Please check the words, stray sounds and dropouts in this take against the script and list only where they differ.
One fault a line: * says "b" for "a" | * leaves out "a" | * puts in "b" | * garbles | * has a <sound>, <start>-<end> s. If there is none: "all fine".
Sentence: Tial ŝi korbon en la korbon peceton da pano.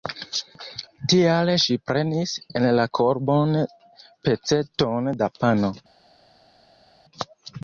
* says "prenis" for "korbon"